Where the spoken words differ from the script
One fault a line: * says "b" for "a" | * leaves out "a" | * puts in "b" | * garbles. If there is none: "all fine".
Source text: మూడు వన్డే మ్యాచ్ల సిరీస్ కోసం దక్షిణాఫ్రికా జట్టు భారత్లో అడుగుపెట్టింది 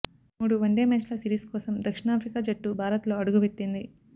all fine